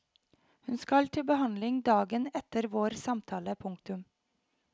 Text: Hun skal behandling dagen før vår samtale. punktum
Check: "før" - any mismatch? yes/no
yes